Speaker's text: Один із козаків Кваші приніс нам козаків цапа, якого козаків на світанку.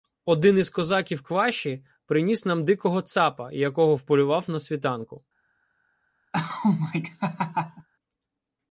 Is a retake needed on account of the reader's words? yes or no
yes